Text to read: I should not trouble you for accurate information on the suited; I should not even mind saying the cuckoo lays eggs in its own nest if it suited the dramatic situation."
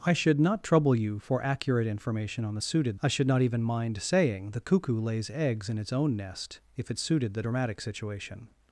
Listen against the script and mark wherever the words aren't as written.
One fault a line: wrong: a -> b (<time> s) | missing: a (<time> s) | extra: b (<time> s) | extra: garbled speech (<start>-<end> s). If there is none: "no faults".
no faults